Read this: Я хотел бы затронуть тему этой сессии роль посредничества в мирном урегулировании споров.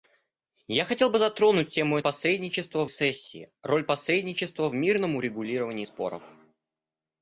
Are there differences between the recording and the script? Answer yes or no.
yes